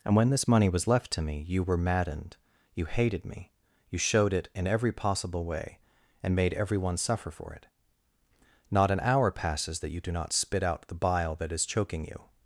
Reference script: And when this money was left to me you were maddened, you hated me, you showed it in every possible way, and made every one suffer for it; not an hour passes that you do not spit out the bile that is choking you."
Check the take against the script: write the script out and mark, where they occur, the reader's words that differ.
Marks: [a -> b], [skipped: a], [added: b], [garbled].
And when this money was left to me you were maddened, you hated me, you showed it in every possible way, and made every one suffer for it; not an hour passes that you do not spit out the bile that is choking you."